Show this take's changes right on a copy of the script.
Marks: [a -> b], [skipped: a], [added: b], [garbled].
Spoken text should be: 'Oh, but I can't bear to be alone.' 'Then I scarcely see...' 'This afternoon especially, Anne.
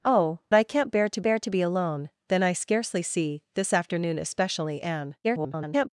'Oh, [skipped: but] I can't bear to [added: bear to] be alone.' 'Then I scarcely see...' 'This afternoon especially, Anne. [garbled]